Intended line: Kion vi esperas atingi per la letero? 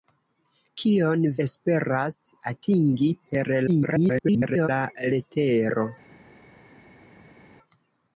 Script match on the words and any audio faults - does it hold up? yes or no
no